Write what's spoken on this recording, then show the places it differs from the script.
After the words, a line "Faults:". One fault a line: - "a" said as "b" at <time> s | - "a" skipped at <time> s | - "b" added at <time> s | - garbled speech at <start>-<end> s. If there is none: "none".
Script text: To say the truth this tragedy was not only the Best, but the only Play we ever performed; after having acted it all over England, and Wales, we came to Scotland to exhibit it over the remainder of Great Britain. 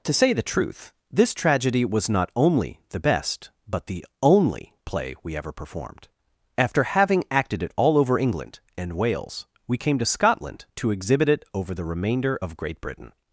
To say the truth this tragedy was not only the Best, but the only Play we ever performed; after having acted it all over England, and Wales, we came to Scotland to exhibit it over the remainder of Great Britain.
Faults:
none